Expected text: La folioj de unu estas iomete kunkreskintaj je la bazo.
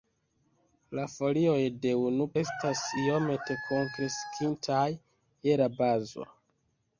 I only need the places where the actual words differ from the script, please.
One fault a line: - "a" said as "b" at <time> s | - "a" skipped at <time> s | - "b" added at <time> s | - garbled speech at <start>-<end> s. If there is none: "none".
none